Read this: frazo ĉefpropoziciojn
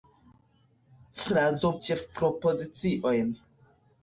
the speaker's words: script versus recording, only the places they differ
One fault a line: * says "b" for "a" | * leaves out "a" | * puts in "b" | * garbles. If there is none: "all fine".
all fine